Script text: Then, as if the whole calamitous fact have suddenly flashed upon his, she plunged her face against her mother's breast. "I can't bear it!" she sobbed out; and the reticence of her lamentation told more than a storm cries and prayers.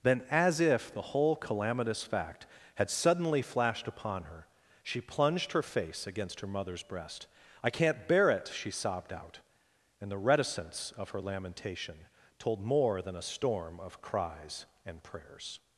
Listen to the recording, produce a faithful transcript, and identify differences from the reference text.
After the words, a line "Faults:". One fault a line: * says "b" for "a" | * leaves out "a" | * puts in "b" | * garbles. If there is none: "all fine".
Then, as if the whole calamitous fact had suddenly flashed upon her, she plunged her face against her mother's breast. "I can't bear it!" she sobbed out; and the reticence of her lamentation told more than a storm of cries and prayers.
Faults:
* says "had" for "have"
* says "her" for "his"
* puts in "of"